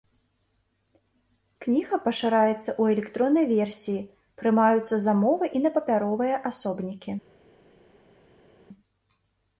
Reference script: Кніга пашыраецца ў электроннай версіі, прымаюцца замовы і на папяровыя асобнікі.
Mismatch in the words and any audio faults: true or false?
false